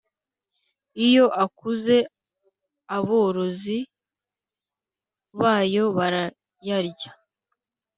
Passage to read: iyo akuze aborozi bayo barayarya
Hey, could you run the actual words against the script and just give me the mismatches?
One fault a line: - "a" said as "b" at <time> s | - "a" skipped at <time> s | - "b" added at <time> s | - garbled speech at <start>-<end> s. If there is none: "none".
none